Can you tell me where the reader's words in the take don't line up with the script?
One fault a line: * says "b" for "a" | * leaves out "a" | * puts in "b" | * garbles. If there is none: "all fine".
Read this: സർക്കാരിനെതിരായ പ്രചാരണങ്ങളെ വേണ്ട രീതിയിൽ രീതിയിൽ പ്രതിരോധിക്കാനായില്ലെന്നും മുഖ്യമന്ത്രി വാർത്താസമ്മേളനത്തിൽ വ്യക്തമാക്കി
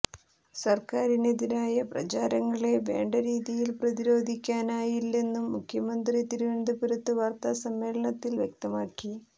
* leaves out "രീതിയിൽ"
* puts in "തിരുവനന്തപുരത്ത്"